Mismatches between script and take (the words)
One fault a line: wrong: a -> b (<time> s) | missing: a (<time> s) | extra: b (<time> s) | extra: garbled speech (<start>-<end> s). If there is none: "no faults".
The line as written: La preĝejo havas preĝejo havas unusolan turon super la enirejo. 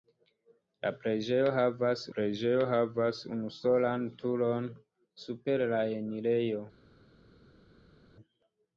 no faults